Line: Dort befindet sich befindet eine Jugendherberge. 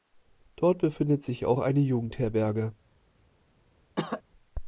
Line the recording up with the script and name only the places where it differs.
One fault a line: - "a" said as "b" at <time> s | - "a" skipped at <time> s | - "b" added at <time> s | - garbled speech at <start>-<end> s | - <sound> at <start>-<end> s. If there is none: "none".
- "befindet" said as "auch" at 1.4 s
- cough at 4.0-4.2 s